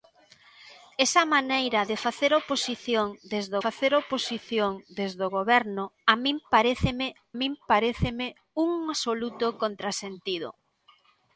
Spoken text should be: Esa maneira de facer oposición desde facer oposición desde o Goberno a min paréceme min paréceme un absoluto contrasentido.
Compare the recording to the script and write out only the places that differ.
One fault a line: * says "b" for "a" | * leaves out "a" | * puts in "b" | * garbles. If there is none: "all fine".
all fine